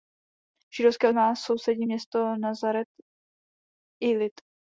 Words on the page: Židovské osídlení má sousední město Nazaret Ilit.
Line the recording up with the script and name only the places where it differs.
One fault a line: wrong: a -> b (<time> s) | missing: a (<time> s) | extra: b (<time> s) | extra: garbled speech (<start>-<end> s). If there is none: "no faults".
missing: osídlení (1.1 s)